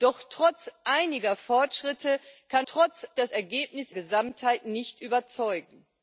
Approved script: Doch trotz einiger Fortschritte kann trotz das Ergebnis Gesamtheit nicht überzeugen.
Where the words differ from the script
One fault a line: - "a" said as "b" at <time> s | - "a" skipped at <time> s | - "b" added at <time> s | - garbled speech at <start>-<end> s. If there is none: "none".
none